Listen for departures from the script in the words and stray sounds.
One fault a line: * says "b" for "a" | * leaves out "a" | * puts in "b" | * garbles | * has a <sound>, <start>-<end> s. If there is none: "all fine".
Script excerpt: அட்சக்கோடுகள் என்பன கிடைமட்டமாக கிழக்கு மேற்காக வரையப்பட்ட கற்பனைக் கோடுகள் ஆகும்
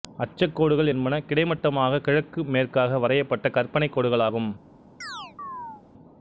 * has a chirp, 5.0-5.8 s